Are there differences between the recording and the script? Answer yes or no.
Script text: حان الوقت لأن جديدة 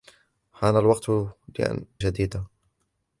no